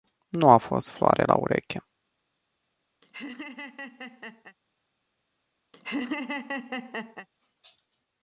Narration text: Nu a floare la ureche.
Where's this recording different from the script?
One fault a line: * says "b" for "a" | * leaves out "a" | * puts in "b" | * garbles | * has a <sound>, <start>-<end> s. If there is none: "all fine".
* puts in "fost"
* has a laugh, 3.0-4.6 s
* has a laugh, 5.7-7.3 s